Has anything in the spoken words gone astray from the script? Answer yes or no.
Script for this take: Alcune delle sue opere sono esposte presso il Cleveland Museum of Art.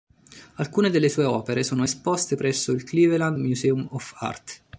no